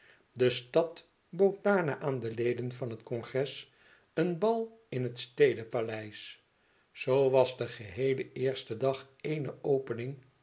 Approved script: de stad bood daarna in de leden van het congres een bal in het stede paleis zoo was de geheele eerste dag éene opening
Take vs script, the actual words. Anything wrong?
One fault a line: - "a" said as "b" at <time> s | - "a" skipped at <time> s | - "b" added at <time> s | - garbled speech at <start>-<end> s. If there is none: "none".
- "in" said as "aan" at 2.0 s